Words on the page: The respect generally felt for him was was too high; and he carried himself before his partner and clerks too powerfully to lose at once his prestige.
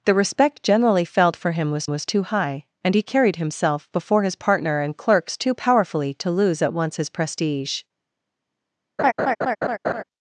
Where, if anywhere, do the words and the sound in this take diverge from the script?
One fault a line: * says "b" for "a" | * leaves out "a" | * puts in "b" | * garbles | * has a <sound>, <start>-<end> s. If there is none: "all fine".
* has a laugh, 9.0-10.0 s